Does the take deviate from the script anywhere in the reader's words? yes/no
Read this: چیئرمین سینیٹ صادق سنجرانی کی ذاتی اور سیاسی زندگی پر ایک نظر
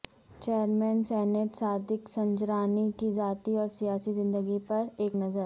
no